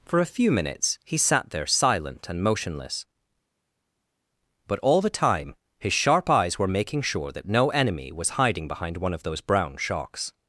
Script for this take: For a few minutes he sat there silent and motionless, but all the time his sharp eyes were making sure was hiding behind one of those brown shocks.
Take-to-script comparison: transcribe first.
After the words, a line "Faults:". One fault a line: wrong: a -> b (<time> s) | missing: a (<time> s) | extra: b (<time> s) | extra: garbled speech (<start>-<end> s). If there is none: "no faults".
For a few minutes he sat there silent and motionless, but all the time his sharp eyes were making sure that no enemy was hiding behind one of those brown shocks.
Faults:
extra: that no enemy (7.3 s)